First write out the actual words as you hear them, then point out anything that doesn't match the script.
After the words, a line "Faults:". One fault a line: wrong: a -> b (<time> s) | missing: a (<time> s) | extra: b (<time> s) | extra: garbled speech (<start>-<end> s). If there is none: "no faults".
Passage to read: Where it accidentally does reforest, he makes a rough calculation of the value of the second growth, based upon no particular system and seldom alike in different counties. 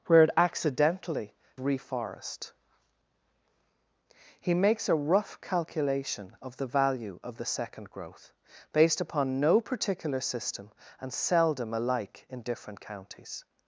Where it accidentally reforest, he makes a rough calculation of the value of the second growth, based upon no particular system and seldom alike in different counties.
Faults:
missing: does (1.4 s)